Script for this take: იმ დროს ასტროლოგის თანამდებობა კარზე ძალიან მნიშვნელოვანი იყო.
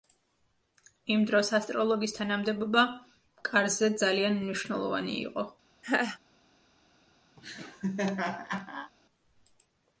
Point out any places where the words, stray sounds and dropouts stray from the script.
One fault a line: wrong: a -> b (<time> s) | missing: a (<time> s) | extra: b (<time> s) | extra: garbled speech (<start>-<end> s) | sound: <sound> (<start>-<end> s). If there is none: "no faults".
sound: laugh (5.8-6.2 s)
sound: laugh (7.4-8.9 s)